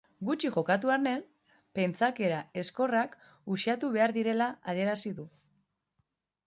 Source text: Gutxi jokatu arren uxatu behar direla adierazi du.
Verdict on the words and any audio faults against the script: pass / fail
fail